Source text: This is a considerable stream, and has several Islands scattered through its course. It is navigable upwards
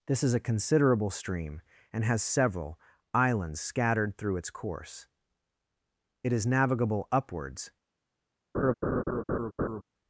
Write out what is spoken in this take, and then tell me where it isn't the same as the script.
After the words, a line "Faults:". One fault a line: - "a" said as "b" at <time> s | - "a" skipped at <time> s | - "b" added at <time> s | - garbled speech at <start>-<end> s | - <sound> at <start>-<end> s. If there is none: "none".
This is a considerable stream, and has several Islands scattered through its course. It is navigable upwards
Faults:
- laugh at 8.5-9.8 s